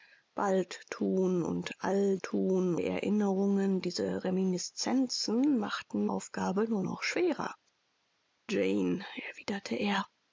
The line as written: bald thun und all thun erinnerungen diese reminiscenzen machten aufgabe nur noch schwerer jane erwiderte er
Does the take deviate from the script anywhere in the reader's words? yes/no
no